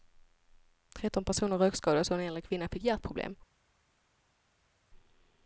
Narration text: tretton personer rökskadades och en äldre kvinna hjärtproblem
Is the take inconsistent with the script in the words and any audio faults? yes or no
yes